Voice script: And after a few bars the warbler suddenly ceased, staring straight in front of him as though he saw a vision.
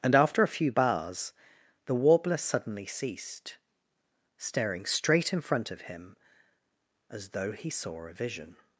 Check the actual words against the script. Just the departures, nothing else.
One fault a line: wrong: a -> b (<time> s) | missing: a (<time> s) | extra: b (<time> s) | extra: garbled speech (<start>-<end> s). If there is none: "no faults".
no faults